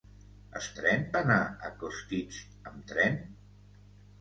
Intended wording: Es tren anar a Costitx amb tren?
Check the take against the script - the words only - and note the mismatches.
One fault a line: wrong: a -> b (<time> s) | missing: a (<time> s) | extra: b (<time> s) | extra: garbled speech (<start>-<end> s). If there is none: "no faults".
no faults